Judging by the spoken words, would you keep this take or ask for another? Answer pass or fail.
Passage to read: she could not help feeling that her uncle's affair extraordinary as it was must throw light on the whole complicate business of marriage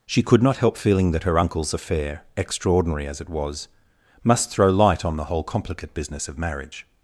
pass